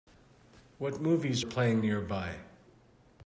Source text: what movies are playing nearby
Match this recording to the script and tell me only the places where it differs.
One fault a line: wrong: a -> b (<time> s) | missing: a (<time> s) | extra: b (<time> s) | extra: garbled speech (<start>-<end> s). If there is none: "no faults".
missing: are (1.4 s)